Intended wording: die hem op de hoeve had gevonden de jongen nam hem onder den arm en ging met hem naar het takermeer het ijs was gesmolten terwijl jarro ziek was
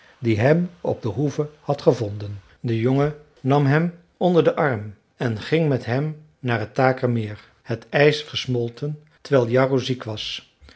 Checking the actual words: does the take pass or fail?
fail